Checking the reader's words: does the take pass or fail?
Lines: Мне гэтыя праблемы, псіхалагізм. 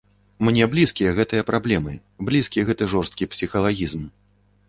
fail